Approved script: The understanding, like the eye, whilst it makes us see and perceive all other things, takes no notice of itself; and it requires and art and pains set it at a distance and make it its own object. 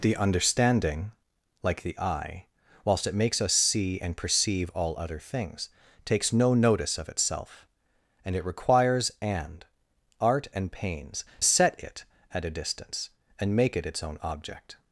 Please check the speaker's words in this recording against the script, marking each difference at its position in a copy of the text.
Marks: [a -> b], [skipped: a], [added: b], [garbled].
The understanding, like the eye, whilst it makes us see and perceive all other things, takes no notice of itself; and it requires and art and pains set it at a distance and make it its own object.